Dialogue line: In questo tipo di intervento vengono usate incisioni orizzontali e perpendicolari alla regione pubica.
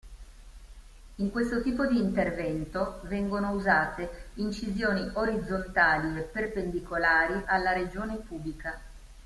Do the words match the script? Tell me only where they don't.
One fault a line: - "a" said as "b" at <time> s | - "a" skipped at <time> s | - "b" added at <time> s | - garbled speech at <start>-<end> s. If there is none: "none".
none